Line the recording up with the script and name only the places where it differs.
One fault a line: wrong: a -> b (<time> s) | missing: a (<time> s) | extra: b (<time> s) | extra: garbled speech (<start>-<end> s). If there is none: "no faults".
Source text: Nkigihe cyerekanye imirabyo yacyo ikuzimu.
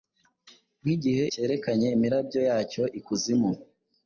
no faults